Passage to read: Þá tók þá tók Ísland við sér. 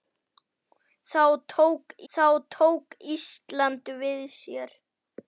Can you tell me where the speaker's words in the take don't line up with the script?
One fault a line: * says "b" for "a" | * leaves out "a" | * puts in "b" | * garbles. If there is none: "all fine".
all fine